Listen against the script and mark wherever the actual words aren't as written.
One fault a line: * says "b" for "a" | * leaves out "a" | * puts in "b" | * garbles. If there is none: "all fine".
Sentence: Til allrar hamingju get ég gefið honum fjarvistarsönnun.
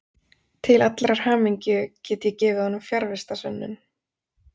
all fine